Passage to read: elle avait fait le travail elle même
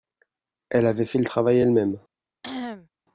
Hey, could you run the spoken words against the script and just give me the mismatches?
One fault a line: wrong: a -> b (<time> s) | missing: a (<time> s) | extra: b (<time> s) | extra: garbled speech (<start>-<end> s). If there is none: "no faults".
no faults